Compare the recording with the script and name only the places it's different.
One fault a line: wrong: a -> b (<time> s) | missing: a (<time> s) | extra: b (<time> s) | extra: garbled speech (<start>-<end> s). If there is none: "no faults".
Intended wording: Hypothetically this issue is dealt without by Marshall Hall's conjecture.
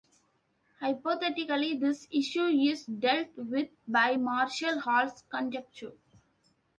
wrong: without -> with (3.3 s)